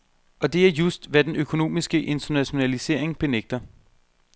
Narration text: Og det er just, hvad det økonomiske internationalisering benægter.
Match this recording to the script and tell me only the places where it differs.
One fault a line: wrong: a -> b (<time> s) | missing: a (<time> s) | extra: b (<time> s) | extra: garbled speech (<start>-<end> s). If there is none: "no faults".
wrong: det -> den (1.2 s)